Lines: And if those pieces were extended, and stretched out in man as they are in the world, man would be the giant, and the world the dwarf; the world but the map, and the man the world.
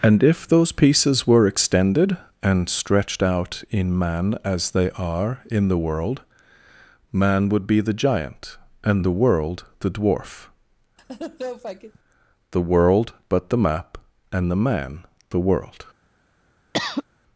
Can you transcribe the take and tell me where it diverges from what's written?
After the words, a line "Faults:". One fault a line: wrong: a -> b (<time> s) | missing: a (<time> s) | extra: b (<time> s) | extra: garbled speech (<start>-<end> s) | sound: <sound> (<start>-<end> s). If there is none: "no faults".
And if those pieces were extended, and stretched out in man as they are in the world, man would be the giant, and the world the dwarf; the world but the map, and the man the world.
Faults:
sound: laugh (11.0-12.0 s)
sound: cough (16.7-17.0 s)